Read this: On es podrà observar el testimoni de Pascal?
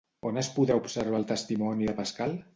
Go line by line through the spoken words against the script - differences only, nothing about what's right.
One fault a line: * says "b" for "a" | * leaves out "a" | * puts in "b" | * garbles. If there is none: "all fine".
all fine